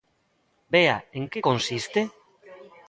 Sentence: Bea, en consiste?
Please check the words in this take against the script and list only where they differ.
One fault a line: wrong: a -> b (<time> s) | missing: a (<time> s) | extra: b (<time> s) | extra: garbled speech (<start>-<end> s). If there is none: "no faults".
extra: que (1.3 s)